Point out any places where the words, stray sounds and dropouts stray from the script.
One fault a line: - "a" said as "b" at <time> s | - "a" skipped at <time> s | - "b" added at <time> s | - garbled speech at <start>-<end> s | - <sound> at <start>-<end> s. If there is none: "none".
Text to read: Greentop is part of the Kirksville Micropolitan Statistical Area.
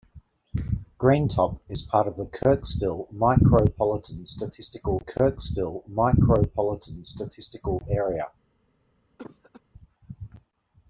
- "Kirksville Micropolitan Statistical" added at 5.0 s
- cough at 9.2-9.6 s